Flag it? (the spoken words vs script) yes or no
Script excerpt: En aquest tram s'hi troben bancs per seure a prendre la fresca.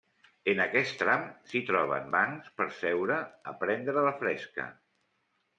no